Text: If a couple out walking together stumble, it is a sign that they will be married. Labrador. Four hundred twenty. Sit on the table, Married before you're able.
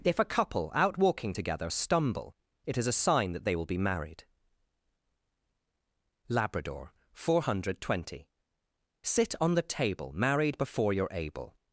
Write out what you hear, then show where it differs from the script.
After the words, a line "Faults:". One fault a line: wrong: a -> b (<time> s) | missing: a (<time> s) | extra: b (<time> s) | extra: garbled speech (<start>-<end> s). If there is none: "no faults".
If a couple out walking together stumble, it is a sign that they will be married. Labrador. Four hundred twenty. Sit on the table, Married before you're able.
Faults:
no faults